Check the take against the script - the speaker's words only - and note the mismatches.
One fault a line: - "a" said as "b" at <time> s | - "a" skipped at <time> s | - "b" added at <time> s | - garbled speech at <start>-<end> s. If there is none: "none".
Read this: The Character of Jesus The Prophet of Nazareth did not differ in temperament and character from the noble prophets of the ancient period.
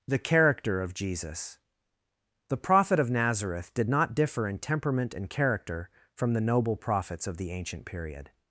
none